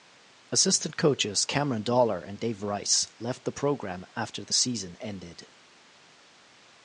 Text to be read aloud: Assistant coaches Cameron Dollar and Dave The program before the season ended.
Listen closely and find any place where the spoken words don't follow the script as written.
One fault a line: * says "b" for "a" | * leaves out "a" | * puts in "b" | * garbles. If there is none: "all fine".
* puts in "Rice left"
* says "after" for "before"